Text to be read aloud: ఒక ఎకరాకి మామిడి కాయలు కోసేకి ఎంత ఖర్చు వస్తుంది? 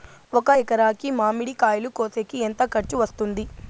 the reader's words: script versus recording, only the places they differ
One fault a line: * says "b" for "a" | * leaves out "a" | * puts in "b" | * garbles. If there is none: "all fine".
all fine